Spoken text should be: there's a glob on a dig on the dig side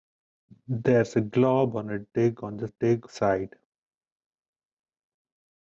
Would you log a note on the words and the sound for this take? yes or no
no